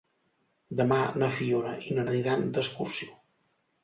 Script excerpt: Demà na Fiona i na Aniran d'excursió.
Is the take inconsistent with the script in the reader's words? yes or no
no